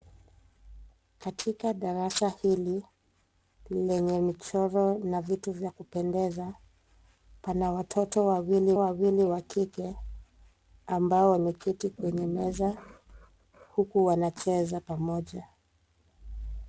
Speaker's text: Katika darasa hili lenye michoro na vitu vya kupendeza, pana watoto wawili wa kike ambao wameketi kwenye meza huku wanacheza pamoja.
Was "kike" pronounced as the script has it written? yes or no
yes